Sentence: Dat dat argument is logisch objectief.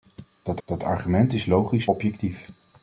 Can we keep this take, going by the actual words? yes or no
yes